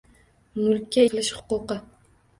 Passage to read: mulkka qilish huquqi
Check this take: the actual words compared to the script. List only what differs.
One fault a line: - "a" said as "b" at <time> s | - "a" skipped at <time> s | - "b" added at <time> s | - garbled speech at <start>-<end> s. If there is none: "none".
none